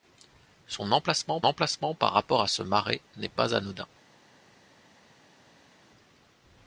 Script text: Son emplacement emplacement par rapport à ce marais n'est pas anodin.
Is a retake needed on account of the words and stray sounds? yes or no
no